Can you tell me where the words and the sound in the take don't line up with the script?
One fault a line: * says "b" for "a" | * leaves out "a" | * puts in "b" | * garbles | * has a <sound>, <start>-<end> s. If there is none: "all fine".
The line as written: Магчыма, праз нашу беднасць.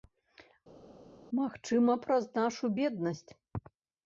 all fine